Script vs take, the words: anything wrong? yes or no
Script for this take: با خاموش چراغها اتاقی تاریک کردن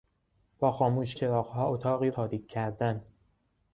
no